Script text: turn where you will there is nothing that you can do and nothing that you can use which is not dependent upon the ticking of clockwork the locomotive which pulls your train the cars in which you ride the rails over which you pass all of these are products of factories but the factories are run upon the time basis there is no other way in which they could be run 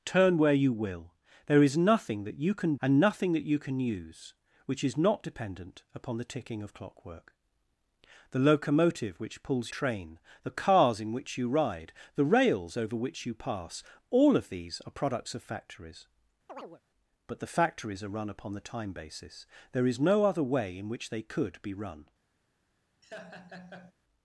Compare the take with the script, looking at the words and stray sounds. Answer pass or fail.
fail